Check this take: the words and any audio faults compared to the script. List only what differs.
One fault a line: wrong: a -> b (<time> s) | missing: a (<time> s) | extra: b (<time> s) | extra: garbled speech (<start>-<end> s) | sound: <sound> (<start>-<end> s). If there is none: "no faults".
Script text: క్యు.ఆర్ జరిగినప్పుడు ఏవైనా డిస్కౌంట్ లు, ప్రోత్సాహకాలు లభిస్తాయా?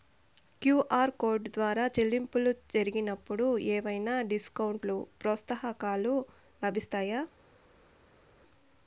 extra: కోడ్ ద్వారా చెల్లింపులు (1.2 s)